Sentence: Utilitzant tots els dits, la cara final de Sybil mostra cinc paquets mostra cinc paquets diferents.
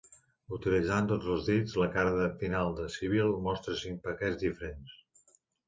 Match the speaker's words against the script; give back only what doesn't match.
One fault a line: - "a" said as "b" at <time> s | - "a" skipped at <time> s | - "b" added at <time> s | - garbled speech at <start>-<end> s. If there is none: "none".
- "mostra cinc paquets" skipped at 4.4 s